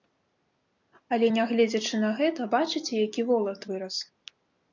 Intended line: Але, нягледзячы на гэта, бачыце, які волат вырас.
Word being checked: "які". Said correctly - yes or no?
yes